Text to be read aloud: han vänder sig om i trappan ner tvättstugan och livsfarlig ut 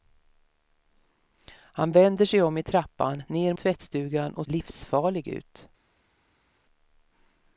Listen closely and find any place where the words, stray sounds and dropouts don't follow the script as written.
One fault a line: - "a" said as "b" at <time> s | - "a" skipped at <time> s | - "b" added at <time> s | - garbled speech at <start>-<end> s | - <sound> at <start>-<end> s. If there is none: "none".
none